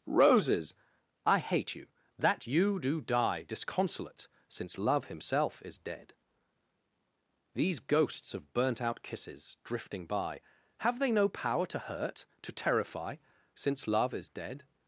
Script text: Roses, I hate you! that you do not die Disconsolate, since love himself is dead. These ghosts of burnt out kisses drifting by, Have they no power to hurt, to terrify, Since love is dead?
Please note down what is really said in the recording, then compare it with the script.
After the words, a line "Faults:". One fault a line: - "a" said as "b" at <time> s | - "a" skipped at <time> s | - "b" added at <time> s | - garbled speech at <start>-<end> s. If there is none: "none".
Roses, I hate you! that you do die Disconsolate, since love himself is dead. These ghosts of burnt out kisses drifting by, Have they no power to hurt, to terrify, Since love is dead?
Faults:
- "not" skipped at 3.0 s